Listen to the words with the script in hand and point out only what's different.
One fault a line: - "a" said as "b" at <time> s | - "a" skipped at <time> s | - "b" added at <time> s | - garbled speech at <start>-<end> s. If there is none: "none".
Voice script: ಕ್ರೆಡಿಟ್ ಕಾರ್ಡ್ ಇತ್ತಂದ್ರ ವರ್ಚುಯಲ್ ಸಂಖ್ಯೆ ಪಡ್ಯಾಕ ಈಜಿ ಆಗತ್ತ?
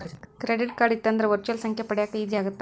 none